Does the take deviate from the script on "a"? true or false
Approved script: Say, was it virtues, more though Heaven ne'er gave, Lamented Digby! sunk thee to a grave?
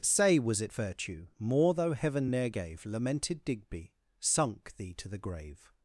true